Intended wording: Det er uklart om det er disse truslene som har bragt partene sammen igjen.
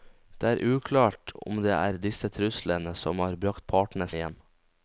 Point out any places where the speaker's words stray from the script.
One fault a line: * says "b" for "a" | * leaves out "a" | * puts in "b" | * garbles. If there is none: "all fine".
* leaves out "sammen"